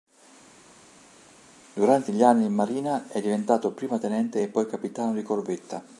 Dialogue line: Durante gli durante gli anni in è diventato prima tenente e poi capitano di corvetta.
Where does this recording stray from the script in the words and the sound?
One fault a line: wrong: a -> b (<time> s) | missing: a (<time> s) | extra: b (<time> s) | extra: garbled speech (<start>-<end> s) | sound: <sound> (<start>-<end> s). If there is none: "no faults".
missing: durante gli (2.2 s)
extra: marina (2.5 s)